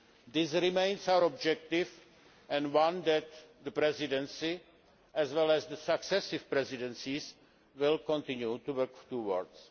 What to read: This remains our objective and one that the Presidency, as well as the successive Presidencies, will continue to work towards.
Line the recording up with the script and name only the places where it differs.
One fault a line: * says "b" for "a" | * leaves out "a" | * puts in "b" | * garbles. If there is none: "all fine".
all fine